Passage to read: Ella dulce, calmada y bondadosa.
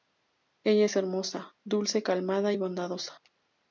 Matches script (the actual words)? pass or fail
fail